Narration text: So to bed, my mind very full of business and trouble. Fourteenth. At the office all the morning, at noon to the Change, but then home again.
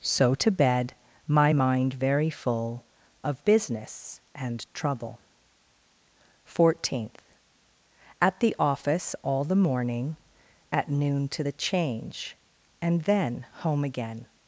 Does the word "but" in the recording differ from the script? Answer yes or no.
yes